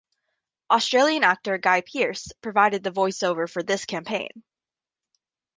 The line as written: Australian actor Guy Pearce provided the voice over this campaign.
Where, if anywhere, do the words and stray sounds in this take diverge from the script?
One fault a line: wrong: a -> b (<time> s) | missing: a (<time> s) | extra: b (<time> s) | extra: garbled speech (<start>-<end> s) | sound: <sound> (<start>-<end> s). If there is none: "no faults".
extra: for (3.5 s)